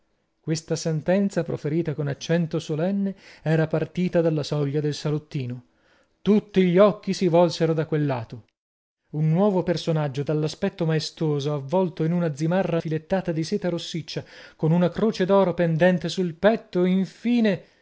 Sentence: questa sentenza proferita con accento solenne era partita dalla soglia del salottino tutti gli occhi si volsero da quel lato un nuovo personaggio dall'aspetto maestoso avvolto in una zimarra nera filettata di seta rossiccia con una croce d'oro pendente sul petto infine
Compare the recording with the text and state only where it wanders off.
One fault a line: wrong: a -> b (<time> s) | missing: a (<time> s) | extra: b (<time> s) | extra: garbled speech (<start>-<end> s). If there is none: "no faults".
missing: nera (12.8 s)